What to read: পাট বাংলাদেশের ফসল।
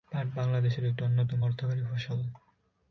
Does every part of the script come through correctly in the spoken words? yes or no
no